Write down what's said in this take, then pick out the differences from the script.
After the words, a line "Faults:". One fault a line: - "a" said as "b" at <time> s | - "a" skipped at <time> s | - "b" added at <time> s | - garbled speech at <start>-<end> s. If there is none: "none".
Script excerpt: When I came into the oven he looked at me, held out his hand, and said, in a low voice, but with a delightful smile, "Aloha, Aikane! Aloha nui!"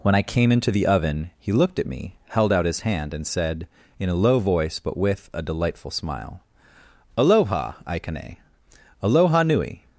When I came into the oven he looked at me, held out his hand, and said, in a low voice, but with a delightful smile, "Aloha, Aikane! Aloha nui!"
Faults:
none